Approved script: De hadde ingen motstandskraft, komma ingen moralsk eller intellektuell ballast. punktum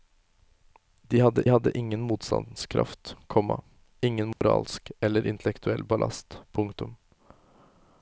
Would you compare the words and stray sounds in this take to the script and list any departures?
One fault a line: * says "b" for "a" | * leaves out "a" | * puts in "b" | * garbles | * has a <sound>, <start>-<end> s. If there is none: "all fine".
* puts in "hadde"
* has a dropout, 4.3-4.4 s